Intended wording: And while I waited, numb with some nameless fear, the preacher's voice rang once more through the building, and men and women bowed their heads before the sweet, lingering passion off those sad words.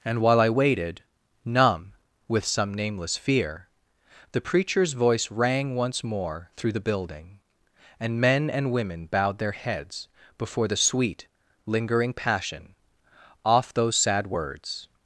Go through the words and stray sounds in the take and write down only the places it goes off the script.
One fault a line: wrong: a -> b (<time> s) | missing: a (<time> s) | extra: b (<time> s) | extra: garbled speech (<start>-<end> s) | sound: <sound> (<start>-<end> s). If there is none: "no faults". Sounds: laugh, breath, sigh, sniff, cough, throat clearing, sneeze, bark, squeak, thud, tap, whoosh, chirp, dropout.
no faults